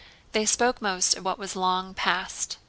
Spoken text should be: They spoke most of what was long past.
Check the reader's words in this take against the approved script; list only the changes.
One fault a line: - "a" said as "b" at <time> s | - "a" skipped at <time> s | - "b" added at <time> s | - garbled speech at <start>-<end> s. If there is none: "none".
none